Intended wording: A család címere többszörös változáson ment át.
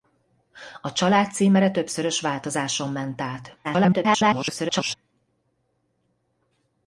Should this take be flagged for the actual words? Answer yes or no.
yes